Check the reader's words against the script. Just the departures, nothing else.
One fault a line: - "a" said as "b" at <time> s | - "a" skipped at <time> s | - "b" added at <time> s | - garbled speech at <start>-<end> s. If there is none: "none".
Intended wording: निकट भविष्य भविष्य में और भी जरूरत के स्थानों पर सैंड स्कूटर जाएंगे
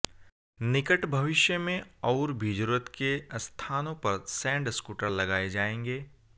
- "भविष्य" skipped at 1.6 s
- "लगाए" added at 5.1 s